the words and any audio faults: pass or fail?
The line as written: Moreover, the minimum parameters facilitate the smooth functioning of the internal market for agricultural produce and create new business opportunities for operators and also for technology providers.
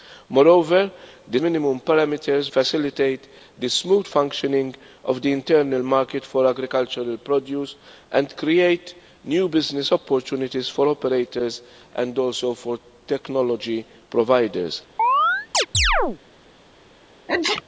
fail